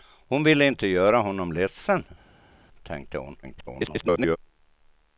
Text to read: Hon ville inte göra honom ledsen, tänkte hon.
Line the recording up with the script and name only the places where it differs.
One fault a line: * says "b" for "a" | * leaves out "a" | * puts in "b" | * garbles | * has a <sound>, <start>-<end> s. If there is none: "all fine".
* garbles